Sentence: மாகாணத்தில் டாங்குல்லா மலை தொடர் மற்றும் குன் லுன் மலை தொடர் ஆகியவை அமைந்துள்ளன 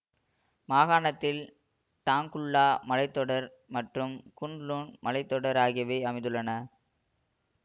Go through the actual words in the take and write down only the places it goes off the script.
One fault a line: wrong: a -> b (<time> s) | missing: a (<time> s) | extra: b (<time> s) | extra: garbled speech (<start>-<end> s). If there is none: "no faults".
no faults